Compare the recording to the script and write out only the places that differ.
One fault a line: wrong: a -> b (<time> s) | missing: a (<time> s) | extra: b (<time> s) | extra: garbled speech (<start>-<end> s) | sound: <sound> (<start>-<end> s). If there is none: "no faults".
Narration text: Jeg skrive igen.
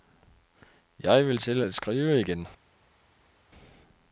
extra: vil til at (1.3 s)